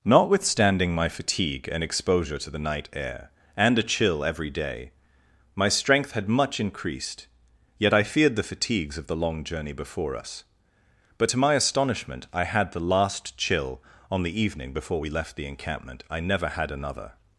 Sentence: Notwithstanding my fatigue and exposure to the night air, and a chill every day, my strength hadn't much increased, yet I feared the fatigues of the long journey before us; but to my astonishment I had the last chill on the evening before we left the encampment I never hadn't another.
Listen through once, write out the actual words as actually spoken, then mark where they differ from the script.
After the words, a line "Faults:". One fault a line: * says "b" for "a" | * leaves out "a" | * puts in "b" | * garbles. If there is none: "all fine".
Notwithstanding my fatigue and exposure to the night air, and a chill every day, my strength had much increased, yet I feared the fatigues of the long journey before us; but to my astonishment I had the last chill on the evening before we left the encampment I never had another.
Faults:
* says "had" for "hadn't"
* says "had" for "hadn't"